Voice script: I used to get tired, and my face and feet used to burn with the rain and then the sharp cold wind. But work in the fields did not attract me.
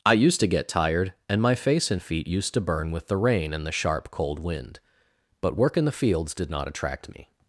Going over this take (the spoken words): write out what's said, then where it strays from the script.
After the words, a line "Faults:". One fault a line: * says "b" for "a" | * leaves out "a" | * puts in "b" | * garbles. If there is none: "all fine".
I used to get tired, and my face and feet used to burn with the rain and the sharp cold wind. But work in the fields did not attract me.
Faults:
* leaves out "then"